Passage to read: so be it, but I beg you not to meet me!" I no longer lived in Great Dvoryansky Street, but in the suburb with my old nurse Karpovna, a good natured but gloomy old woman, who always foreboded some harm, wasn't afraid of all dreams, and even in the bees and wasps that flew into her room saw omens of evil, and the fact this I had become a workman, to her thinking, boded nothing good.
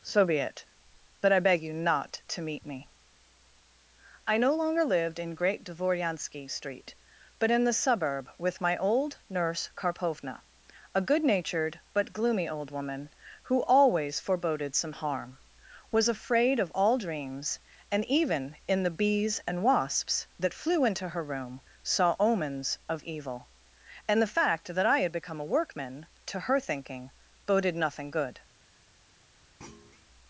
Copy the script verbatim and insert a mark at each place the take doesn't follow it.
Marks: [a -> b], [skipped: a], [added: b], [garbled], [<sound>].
so be it, but I beg you not to meet me!" I no longer lived in Great Dvoryansky Street, but in the suburb with my old nurse Karpovna, a good natured but gloomy old woman, who always foreboded some harm, [wasn't -> was] afraid of all dreams, and even in the bees and wasps that flew into her room saw omens of evil, and the fact [this -> that] I had become a workman, to her thinking, boded nothing good. [thud]